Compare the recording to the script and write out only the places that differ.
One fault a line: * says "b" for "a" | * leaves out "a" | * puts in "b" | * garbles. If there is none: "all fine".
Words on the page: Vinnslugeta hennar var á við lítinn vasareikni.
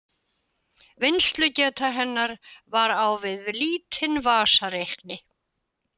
all fine